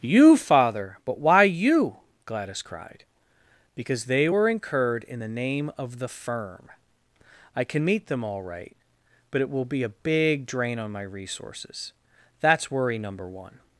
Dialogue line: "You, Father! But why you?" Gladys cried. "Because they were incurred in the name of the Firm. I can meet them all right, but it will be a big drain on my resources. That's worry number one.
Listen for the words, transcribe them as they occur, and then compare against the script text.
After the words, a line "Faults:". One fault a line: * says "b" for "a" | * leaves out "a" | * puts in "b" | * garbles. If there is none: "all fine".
"You, Father! But why you?" Gladys cried. "Because they were incurred in the name of the Firm. I can meet them all right, but it will be a big drain on my resources. That's worry number one.
Faults:
all fine